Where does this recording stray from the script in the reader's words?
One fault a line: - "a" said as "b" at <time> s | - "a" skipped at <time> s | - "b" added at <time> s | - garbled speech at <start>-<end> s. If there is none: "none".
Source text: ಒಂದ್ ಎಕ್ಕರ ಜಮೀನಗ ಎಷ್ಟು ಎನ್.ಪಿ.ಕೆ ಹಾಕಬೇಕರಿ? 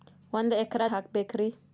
- "ಜಮೀನಗ ಎಷ್ಟು ಎನ್.ಪಿ.ಕೆ" skipped at 0.8 s